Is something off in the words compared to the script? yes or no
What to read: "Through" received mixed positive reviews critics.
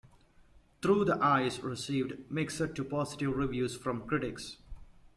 yes